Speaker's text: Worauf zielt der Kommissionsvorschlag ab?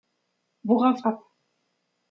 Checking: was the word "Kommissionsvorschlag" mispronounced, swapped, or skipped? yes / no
yes